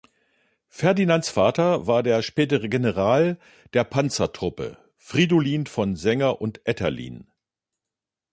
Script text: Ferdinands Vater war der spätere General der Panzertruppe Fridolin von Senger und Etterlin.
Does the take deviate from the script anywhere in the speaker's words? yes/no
no